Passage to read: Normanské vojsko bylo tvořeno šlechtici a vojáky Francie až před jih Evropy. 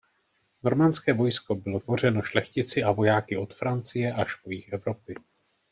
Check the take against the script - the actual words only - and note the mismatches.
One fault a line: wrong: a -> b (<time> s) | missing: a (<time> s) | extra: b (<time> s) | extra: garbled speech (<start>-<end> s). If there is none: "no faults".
extra: od (3.4 s)
wrong: před -> po (4.3 s)